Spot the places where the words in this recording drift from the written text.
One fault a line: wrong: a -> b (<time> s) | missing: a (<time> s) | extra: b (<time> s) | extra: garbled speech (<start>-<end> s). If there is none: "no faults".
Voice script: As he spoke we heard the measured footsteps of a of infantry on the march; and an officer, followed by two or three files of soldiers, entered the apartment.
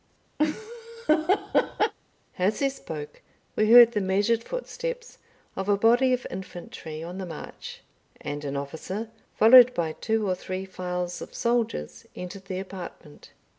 extra: body (5.8 s)